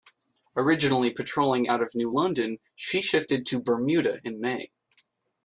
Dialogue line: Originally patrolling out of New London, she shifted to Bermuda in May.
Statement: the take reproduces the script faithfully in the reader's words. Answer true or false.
true